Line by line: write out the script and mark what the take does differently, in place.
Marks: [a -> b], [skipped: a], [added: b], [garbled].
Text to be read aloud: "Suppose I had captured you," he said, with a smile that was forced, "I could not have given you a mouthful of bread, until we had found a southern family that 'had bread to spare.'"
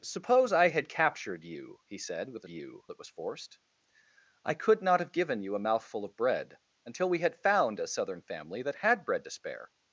"Suppose I had captured you," he said, with a [smile -> you] that was forced, "I could not have given you a mouthful of bread, until we had found a southern family that 'had bread to spare.'"